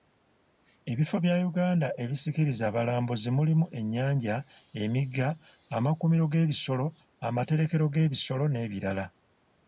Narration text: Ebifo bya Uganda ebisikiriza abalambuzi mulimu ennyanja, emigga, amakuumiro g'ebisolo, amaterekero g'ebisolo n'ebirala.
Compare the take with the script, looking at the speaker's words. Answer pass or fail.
pass